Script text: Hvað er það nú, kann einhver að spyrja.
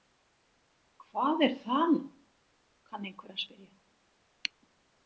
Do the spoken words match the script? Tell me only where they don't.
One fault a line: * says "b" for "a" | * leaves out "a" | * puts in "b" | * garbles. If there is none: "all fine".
all fine